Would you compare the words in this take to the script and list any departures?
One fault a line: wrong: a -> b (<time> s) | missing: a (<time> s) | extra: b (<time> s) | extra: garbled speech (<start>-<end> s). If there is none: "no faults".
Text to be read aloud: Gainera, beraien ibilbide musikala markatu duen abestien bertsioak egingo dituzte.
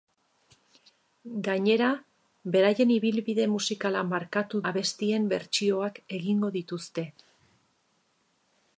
missing: duen (4.6 s)